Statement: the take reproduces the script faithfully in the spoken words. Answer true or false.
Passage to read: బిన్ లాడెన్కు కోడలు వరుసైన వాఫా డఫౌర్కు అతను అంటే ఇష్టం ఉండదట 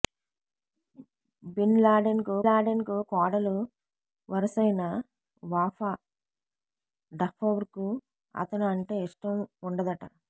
false